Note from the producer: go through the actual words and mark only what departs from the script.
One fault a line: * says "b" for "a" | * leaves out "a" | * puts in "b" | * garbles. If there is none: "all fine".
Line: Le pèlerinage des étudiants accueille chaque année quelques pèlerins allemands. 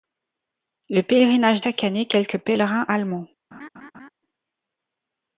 * leaves out "des étudiants accueille"